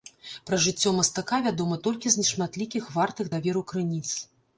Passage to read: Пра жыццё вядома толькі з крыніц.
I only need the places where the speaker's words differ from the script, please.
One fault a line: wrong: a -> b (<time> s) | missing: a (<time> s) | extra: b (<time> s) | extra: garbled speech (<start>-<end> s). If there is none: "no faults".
extra: мастака (1.0 s)
extra: нешматлікіх вартых даверу (2.2 s)